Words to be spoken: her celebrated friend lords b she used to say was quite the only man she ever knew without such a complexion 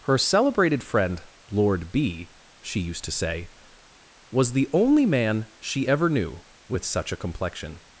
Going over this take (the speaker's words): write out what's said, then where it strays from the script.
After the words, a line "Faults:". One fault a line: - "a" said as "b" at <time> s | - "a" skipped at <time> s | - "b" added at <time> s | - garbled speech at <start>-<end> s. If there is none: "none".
her celebrated friend lord b she used to say was the only man she ever knew with such a complexion
Faults:
- "lords" said as "lord" at 1.5 s
- "quite" skipped at 4.5 s
- "without" said as "with" at 6.7 s